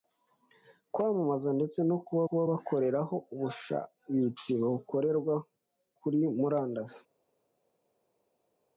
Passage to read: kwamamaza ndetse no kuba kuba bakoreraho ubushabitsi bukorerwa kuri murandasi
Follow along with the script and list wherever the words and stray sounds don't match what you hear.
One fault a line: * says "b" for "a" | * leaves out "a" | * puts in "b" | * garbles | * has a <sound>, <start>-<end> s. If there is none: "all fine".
all fine